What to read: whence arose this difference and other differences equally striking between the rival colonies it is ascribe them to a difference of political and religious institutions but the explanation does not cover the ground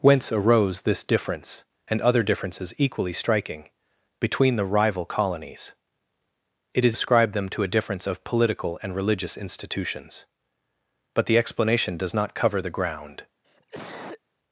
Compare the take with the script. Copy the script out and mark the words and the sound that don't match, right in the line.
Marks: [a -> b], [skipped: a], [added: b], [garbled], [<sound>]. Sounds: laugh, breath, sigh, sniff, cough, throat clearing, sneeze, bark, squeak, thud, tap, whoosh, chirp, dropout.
whence arose this difference and other differences equally striking between the rival colonies it is ascribe them to a difference of political and religious institutions but the explanation does not cover the ground [cough]